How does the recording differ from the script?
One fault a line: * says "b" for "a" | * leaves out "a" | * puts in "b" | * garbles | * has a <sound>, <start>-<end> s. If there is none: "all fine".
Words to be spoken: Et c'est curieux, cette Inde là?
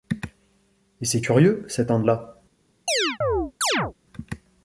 * has a chirp, 2.9-3.9 s